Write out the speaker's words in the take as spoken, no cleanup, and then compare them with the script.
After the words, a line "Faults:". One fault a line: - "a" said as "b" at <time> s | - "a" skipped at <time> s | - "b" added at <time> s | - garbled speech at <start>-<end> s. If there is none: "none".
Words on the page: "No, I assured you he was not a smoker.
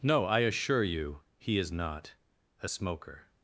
"No, I assure you he is not a smoker.
Faults:
- "assured" said as "assure" at 0.4 s
- "was" said as "is" at 1.6 s